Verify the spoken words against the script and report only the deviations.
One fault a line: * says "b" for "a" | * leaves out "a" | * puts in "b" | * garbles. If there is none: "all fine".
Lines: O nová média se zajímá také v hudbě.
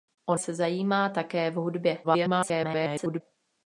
* leaves out "nová média"
* garbles